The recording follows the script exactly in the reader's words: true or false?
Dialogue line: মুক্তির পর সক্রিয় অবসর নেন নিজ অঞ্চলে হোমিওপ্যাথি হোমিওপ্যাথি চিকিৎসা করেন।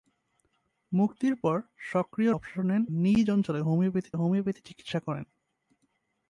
true